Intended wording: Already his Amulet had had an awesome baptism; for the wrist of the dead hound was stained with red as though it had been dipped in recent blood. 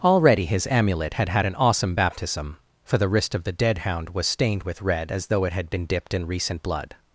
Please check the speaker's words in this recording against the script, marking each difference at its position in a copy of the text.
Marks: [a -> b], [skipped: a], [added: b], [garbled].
Already his Amulet had had an awesome baptism; for the wrist of the dead hound was stained with red as though it had been dipped in recent blood.